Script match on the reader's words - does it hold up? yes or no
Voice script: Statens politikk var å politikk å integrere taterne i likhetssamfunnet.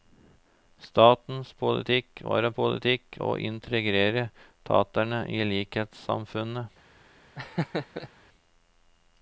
yes